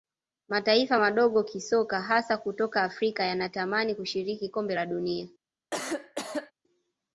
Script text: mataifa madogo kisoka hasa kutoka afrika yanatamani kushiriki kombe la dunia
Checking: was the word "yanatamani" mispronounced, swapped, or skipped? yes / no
no